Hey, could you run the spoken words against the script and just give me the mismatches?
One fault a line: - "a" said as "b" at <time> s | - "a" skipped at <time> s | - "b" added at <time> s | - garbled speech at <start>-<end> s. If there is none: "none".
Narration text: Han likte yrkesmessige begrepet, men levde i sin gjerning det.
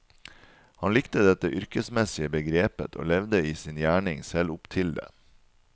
- "dette" added at 1.3 s
- "men" said as "og" at 3.0 s
- "selv opp til" added at 4.2 s